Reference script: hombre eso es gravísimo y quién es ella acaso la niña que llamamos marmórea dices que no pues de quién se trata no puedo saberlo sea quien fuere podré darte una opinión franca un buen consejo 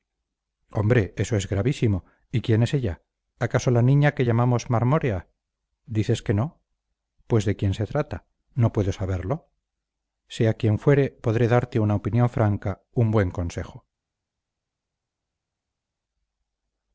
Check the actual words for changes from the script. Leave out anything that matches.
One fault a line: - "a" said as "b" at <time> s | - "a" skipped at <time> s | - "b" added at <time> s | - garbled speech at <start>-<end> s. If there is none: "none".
none